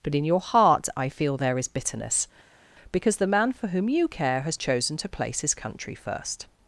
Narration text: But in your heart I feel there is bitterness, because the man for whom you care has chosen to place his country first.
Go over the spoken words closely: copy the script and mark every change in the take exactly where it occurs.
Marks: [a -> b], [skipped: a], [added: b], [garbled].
But in your heart I feel there is bitterness, because the man for whom you care has chosen to place his country first.